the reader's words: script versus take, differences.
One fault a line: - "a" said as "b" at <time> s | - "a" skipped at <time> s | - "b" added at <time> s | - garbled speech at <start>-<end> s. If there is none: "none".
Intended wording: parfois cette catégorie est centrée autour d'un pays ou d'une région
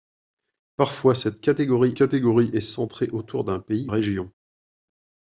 - "catégorie" added at 1.9 s
- "ou d'une" skipped at 3.9 s